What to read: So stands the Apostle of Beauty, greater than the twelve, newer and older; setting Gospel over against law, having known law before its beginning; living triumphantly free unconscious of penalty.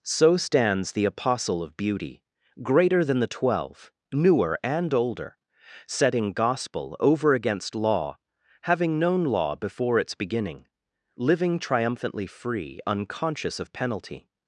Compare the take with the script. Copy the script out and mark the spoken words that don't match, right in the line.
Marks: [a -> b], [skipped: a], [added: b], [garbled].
So stands the Apostle of Beauty, greater than the twelve, newer and older; setting Gospel over against law, having known law before its beginning; living triumphantly free unconscious of penalty.